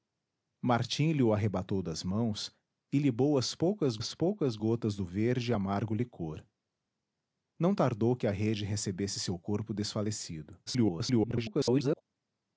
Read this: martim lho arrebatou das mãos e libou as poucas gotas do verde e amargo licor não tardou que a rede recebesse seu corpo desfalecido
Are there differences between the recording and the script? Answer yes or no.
yes